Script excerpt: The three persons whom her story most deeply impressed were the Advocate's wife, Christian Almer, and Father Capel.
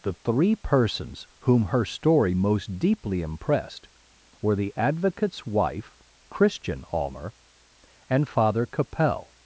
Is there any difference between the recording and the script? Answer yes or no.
no